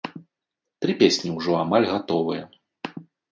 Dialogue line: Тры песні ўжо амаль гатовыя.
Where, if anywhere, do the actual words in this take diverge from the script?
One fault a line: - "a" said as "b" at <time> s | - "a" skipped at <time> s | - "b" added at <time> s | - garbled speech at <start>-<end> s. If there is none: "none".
none